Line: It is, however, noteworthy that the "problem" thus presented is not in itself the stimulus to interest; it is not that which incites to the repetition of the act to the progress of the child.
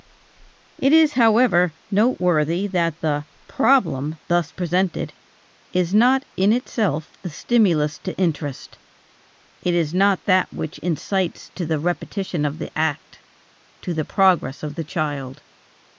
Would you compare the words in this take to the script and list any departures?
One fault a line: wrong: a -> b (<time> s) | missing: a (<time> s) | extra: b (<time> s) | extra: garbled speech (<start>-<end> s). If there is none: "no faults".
no faults